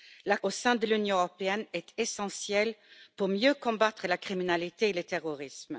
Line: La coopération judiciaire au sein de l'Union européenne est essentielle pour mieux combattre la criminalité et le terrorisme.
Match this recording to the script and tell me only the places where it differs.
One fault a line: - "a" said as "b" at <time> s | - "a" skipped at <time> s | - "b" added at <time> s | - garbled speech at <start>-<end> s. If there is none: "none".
- "coopération judiciaire" skipped at 0.4 s